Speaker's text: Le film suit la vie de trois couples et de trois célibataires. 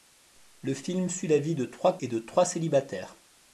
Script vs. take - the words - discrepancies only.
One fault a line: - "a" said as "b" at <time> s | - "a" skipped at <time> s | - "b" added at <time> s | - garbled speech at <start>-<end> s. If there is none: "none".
- "couples" skipped at 2.0 s